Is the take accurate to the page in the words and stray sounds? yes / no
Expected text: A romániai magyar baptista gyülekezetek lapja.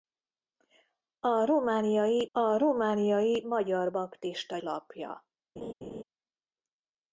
no